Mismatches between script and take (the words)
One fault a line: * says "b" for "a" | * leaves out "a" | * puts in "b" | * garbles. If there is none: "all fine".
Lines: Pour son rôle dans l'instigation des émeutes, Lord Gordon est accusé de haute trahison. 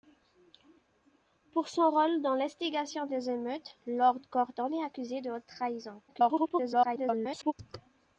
* garbles